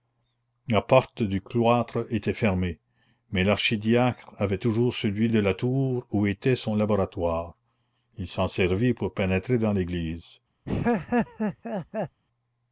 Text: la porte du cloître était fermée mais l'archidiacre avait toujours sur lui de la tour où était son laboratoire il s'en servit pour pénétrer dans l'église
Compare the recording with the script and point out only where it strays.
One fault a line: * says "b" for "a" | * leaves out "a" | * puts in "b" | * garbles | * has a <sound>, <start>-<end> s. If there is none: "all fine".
* has a laugh, 10.6-12.2 s